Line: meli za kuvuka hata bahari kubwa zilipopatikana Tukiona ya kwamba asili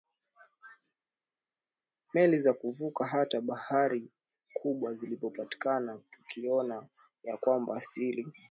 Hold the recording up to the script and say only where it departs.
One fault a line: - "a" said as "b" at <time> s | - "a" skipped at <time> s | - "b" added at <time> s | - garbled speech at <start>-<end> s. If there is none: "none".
none